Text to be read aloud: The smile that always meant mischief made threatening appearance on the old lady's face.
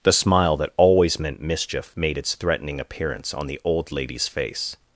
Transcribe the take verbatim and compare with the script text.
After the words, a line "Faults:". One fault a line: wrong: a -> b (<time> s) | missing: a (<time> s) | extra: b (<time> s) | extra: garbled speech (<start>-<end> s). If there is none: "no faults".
The smile that always meant mischief made its threatening appearance on the old lady's face.
Faults:
extra: its (2.2 s)